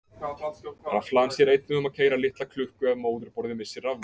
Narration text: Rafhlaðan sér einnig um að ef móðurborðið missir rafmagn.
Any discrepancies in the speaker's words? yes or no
yes